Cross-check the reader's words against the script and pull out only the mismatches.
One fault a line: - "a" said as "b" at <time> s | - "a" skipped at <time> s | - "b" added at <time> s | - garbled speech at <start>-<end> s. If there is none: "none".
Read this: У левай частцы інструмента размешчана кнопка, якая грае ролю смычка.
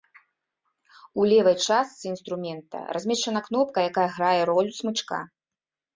none